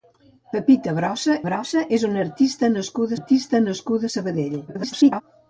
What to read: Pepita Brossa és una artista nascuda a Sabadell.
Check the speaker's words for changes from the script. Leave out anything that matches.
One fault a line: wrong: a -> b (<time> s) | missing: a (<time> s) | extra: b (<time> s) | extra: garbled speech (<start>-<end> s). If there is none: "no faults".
extra: Brossa (1.5 s)
extra: artista nascuda (3.2 s)
extra: garbled speech (4.7-5.2 s)